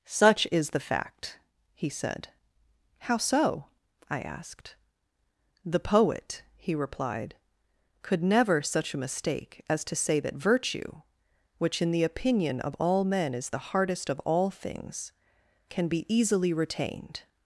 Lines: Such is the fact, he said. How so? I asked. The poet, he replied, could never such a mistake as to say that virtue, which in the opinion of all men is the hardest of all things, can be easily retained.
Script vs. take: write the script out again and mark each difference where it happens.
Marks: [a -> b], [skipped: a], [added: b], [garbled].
Such is the fact, he said. How so? I asked. The poet, he replied, could never such a mistake as to say that virtue, which in the opinion of all men is the hardest of all things, can be easily retained.